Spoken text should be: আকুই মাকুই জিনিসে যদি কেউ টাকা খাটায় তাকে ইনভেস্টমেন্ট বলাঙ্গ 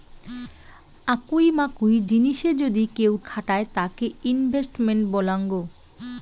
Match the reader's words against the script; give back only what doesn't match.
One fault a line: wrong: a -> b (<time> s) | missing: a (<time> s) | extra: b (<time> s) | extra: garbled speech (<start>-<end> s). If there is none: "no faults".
missing: টাকা (3.1 s)